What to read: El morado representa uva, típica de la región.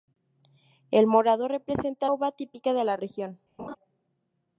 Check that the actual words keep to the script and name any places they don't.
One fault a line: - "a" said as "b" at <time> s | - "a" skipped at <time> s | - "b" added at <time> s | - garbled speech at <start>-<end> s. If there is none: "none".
none